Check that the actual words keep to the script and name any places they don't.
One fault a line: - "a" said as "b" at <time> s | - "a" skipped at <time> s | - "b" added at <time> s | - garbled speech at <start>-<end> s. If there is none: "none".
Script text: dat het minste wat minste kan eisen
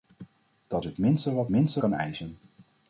none